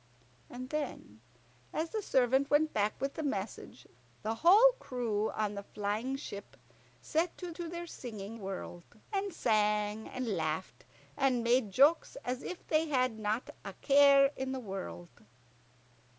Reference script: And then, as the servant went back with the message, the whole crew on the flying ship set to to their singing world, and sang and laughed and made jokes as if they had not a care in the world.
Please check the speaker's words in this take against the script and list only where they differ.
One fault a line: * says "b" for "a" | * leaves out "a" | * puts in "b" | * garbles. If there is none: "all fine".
all fine